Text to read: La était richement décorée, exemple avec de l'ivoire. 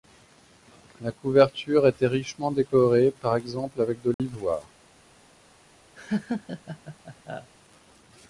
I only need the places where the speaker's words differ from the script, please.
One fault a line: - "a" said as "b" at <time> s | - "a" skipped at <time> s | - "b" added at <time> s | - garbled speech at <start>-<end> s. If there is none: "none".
- "couverture" added at 1.1 s
- "par" added at 3.2 s